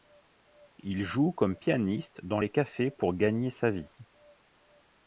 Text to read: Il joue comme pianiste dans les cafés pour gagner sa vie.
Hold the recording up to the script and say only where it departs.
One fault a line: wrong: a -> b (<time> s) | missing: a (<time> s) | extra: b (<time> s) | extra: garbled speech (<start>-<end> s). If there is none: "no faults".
no faults